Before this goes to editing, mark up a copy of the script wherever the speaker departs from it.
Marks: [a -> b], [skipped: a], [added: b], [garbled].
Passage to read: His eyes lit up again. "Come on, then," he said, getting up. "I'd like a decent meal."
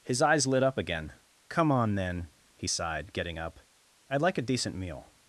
His eyes lit up again. "Come on, then," he [said, -> sighed] getting up. "I'd like a decent meal."